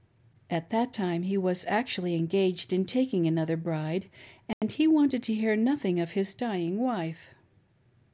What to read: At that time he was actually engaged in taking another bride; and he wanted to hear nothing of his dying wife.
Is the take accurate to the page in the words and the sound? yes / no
no